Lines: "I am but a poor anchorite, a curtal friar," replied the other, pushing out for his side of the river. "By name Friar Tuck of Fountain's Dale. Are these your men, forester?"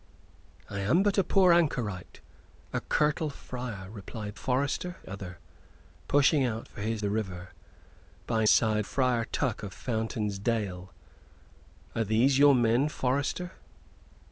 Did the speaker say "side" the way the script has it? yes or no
no